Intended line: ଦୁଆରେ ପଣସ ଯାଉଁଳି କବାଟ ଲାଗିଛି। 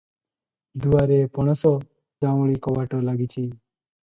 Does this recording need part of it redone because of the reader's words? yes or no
no